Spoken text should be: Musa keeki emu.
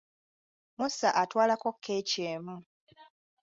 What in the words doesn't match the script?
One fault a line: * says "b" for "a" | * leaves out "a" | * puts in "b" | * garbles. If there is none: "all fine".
* puts in "atwalako"